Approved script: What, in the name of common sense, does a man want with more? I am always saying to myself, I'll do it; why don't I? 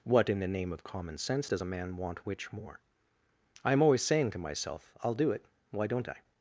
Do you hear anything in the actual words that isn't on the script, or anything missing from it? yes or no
yes